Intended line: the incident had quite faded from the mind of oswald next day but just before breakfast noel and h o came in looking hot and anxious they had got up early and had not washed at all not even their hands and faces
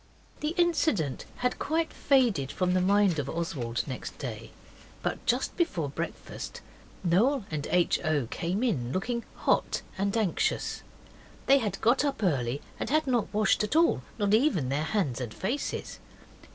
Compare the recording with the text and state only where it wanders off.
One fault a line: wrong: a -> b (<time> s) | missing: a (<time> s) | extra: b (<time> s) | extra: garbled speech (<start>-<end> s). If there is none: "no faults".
no faults